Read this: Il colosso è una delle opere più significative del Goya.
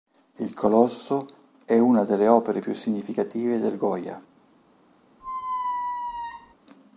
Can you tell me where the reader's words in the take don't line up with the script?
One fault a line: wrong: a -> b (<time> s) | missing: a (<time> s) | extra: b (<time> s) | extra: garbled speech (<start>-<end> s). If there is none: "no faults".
no faults